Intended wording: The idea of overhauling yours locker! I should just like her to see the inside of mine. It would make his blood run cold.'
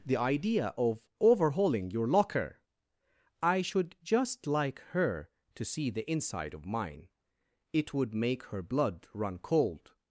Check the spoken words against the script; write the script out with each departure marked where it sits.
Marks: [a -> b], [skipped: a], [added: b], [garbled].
The idea of overhauling [yours -> your] locker! I should just like her to see the inside of mine. It would make [his -> her] blood run cold.'